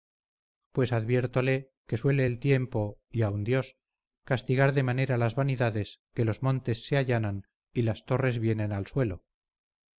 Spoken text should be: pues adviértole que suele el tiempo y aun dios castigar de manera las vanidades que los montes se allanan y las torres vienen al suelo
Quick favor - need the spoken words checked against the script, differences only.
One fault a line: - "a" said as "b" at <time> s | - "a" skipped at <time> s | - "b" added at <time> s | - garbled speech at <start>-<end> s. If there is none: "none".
none